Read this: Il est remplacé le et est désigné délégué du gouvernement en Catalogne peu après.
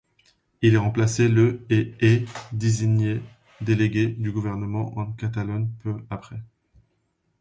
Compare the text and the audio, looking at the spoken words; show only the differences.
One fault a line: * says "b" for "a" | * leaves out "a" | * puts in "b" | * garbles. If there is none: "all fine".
all fine